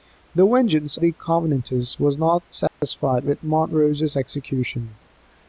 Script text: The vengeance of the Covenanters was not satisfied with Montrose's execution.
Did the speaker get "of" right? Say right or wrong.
wrong